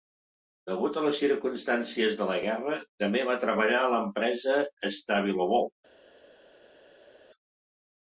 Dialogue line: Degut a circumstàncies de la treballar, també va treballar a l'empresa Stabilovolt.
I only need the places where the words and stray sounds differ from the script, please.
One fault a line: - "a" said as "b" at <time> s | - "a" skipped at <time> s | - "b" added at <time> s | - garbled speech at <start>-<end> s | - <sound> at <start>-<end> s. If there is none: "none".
- "les" added at 1.1 s
- "treballar" said as "guerra" at 2.5 s